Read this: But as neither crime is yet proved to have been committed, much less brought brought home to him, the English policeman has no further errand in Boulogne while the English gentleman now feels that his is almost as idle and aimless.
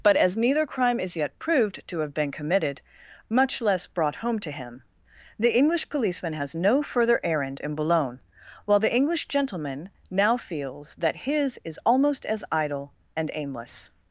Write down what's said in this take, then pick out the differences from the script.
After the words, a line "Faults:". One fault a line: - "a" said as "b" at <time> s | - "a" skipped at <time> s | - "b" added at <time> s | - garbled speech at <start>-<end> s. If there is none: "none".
But as neither crime is yet proved to have been committed, much less brought home to him, the English policeman has no further errand in Boulogne while the English gentleman now feels that his is almost as idle and aimless.
Faults:
- "brought" skipped at 4.2 s